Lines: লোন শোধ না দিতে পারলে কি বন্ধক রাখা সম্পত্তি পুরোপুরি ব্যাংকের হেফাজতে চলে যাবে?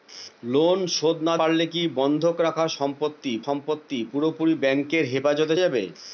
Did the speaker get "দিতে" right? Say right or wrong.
wrong